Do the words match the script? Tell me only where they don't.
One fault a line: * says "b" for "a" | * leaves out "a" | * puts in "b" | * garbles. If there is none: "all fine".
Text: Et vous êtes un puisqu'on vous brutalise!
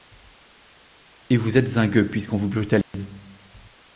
* puts in "gueux"